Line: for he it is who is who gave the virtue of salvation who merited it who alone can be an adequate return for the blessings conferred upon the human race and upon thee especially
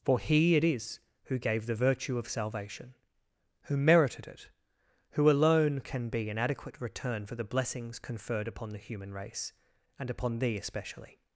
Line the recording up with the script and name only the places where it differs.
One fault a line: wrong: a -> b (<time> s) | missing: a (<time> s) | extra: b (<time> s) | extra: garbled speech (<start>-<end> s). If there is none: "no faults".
missing: is who (1.4 s)